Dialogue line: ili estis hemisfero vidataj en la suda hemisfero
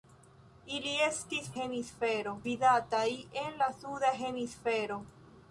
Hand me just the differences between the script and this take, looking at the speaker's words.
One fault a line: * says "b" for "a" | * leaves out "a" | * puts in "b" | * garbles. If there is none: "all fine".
all fine